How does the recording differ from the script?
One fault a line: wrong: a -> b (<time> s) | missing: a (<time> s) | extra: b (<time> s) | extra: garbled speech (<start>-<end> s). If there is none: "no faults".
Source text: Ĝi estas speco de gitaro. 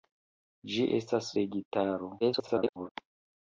missing: speco (1.3 s)
extra: garbled speech (2.2-2.9 s)